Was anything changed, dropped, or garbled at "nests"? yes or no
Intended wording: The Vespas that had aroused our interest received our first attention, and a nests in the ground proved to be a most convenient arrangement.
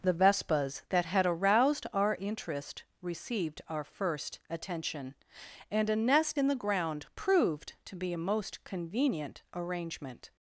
yes